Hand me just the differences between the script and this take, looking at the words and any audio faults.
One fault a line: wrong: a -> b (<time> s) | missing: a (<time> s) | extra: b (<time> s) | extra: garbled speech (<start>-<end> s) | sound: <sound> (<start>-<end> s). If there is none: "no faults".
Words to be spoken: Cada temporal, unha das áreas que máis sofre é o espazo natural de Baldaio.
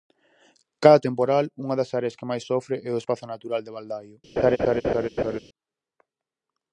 sound: laugh (4.4-5.4 s)